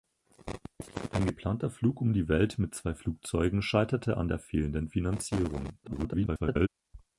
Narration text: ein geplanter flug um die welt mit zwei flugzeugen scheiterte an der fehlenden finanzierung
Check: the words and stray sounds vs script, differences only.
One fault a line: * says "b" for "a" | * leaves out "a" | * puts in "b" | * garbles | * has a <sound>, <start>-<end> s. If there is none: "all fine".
* garbles